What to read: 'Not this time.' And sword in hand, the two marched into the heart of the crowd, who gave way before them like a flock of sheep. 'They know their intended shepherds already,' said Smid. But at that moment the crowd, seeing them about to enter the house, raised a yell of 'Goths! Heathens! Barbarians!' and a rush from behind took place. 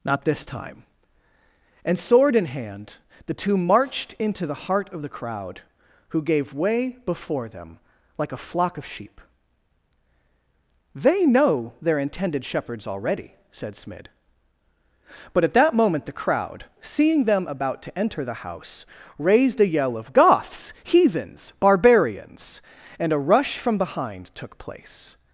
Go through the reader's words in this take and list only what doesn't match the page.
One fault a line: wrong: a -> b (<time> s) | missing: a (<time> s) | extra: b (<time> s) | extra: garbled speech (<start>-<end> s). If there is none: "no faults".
no faults